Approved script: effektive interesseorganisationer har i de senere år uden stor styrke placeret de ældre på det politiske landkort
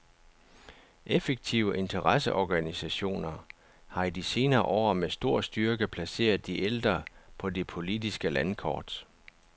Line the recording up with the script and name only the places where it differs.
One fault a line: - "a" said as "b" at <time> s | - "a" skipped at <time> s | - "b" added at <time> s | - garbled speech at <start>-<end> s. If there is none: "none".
- "uden" said as "med" at 4.9 s